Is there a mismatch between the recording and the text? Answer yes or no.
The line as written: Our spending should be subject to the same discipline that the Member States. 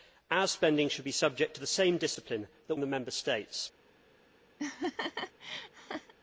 no